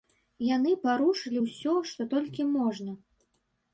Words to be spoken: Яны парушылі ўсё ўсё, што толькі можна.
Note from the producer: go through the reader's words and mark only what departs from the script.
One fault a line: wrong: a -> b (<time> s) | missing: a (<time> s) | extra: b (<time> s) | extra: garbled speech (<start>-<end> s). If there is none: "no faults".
missing: ўсё (1.7 s)